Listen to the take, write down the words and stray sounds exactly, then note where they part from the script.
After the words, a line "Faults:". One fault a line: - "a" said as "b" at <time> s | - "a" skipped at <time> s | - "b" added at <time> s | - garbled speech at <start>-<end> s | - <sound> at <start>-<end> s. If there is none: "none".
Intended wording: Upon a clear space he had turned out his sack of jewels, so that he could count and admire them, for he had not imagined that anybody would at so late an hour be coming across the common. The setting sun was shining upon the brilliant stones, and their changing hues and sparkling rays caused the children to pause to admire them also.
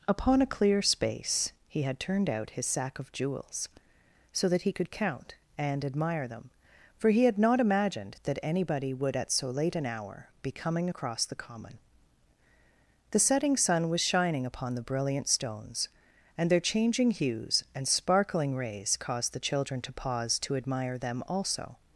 Upon a clear space he had turned out his sack of jewels, so that he could count and admire them, for he had not imagined that anybody would at so late an hour be coming across the common. The setting sun was shining upon the brilliant stones, and their changing hues and sparkling rays caused the children to pause to admire them also.
Faults:
none